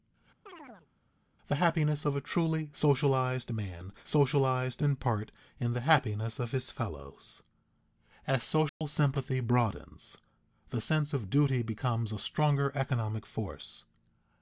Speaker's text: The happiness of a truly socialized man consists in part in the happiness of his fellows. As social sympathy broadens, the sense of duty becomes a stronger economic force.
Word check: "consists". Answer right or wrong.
wrong